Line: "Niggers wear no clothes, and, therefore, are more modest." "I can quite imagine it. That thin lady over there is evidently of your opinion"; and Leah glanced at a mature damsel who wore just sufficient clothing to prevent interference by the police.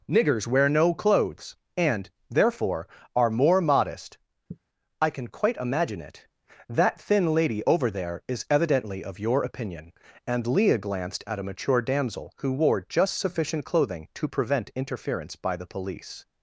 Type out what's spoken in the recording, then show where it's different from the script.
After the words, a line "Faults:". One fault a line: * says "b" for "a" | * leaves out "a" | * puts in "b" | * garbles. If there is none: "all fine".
"Niggers wear no clothes, and, therefore, are more modest." "I can quite imagine it. That thin lady over there is evidently of your opinion"; and Leah glanced at a mature damsel who wore just sufficient clothing to prevent interference by the police.
Faults:
all fine